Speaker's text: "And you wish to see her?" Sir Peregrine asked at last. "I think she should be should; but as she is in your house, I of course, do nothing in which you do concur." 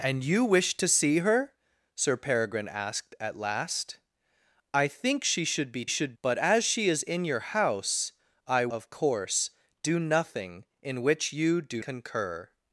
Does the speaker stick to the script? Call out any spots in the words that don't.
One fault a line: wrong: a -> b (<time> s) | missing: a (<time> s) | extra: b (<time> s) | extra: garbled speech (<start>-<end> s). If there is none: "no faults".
no faults